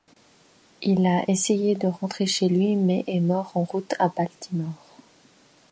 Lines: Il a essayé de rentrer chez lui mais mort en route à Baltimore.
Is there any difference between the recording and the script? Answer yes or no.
yes